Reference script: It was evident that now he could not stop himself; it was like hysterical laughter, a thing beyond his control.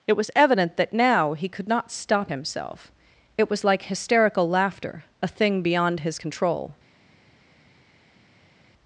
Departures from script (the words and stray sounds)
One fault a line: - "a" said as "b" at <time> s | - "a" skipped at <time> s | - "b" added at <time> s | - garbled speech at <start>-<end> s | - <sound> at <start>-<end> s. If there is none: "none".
none